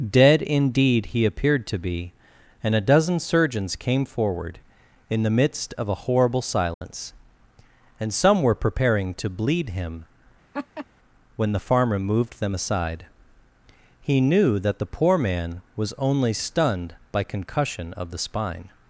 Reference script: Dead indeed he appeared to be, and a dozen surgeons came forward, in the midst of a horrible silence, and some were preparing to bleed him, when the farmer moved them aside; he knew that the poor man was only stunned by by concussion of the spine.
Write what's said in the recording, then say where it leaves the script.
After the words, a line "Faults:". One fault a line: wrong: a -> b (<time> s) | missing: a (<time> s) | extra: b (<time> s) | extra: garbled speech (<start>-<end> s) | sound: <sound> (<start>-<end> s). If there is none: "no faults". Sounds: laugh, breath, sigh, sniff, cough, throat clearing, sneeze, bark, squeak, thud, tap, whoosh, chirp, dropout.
Dead indeed he appeared to be, and a dozen surgeons came forward, in the midst of a horrible silence, and some were preparing to bleed him, when the farmer moved them aside; he knew that the poor man was only stunned by concussion of the spine.
Faults:
sound: dropout (6.7-6.8 s)
sound: laugh (10.5-10.9 s)
missing: by (17.2 s)